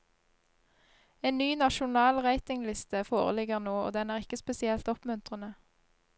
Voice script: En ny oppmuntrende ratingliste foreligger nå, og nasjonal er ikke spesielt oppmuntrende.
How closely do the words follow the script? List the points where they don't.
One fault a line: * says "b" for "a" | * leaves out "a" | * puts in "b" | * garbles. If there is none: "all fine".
* says "nasjonal" for "oppmuntrende"
* says "den" for "nasjonal"